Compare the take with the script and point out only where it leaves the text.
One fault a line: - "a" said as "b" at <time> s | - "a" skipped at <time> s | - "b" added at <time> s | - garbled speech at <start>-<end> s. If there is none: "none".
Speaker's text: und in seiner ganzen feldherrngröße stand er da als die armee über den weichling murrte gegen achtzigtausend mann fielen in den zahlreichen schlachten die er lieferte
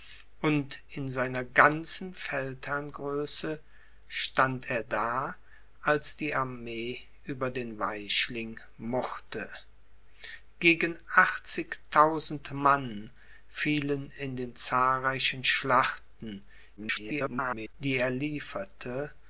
- garbled speech at 16.8-17.7 s